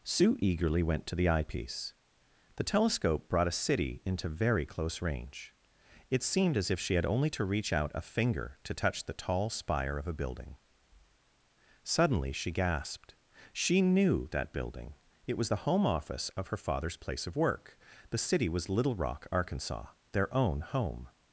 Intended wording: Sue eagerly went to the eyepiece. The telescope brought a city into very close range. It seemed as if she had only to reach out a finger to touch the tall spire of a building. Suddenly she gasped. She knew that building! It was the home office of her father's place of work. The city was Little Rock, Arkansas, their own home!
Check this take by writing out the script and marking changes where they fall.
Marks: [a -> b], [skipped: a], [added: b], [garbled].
Sue eagerly went to the eyepiece. The telescope brought a city into very close range. It seemed as if she had only to reach out a finger to touch the tall spire of a building. Suddenly she gasped. She knew that building! It was the home office of her father's place of work. The city was Little Rock, Arkansas, their own home!